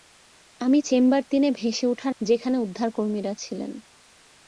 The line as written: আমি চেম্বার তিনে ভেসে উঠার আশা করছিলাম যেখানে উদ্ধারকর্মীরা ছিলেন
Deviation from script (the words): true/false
true